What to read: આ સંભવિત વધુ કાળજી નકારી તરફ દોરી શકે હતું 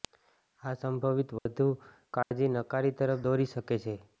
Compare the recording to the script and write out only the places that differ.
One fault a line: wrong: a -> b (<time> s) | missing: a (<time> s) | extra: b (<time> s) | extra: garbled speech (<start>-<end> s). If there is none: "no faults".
wrong: હતું -> છે (3.8 s)